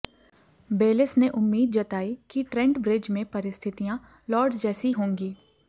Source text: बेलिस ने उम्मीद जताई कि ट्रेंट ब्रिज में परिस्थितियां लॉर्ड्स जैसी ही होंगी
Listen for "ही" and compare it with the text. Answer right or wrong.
wrong